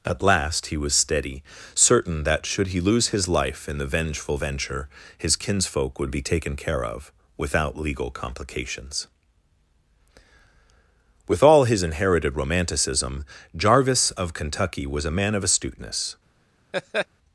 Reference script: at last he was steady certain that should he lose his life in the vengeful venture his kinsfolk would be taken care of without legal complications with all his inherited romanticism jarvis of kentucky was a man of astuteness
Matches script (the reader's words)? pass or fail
pass